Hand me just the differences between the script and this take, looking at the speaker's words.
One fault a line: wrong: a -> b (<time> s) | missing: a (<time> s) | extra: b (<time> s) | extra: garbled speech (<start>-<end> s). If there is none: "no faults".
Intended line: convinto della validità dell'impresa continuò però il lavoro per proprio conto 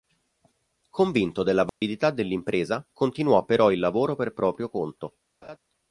no faults